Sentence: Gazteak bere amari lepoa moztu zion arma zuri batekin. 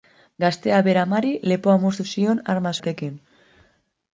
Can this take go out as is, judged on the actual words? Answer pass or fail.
fail